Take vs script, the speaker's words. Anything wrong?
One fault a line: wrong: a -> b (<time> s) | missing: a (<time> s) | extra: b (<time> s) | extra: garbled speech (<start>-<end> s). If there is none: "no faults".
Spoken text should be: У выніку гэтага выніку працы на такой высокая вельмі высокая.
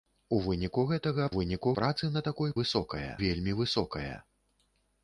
no faults